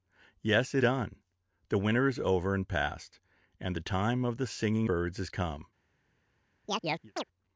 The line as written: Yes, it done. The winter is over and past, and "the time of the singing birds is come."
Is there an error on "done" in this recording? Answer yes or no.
no